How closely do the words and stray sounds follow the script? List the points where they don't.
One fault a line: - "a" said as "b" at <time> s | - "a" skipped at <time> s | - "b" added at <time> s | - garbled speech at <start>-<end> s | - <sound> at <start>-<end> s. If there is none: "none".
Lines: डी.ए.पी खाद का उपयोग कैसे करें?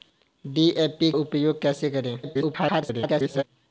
- "खाद का" skipped at 1.1 s
- garbled speech at 2.2-3.4 s